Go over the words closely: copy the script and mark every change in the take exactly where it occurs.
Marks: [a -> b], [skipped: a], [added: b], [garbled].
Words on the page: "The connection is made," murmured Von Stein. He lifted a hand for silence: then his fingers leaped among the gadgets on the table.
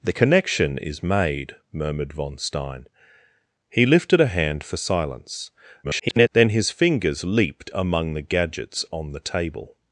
"The connection is made," murmured Von Stein. He lifted a hand for silence: [garbled] then his fingers leaped among the gadgets on the table.